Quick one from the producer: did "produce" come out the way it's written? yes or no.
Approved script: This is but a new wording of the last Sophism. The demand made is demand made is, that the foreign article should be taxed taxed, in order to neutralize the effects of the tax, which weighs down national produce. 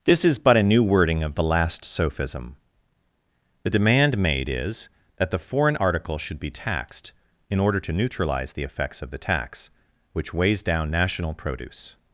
yes